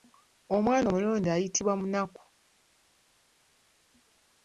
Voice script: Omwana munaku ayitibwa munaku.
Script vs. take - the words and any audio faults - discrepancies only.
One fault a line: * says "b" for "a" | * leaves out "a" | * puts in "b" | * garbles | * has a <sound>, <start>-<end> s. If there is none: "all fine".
* says "omulonde" for "munaku"